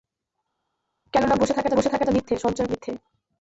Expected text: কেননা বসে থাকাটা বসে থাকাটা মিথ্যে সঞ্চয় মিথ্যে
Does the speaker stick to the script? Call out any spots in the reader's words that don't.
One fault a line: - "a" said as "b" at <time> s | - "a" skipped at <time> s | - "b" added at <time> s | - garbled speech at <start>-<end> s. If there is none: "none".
none